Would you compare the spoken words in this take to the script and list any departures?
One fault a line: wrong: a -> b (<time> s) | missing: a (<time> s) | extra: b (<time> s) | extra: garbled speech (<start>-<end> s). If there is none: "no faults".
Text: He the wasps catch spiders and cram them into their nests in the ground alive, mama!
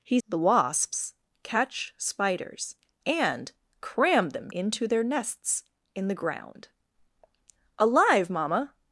no faults